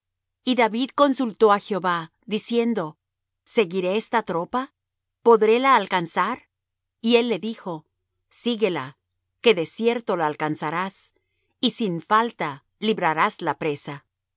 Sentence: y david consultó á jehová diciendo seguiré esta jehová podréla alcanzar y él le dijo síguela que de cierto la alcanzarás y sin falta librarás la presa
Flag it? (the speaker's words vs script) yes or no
yes